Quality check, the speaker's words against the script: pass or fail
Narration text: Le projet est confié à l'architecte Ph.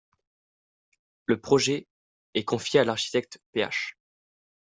pass